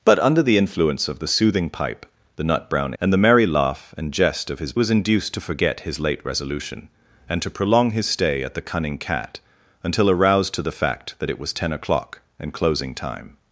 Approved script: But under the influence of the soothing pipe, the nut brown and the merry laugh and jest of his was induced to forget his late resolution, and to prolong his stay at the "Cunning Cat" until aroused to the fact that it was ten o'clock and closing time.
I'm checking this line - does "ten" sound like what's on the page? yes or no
yes